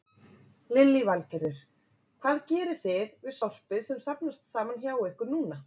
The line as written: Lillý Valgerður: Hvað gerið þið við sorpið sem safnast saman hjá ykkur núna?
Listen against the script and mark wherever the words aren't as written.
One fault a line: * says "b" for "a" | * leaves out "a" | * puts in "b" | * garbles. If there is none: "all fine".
all fine